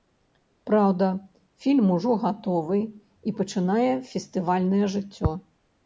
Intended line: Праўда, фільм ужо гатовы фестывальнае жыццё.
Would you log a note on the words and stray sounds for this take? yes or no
yes